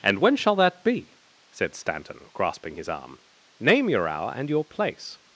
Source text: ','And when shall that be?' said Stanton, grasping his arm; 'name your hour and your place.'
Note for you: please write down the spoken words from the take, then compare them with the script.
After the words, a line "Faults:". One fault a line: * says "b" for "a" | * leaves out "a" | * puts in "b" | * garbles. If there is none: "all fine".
','And when shall that be?' said Stanton, grasping his arm; 'name your hour and your place.'
Faults:
all fine